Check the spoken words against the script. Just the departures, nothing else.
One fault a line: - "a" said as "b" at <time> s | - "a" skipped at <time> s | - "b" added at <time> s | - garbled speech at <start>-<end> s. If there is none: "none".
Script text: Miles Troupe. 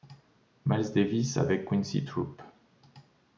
- "Davis avec Quincy" added at 0.9 s